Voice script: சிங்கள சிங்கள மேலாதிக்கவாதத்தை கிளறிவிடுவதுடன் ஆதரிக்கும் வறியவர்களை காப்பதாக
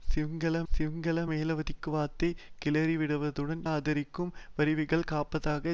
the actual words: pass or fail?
pass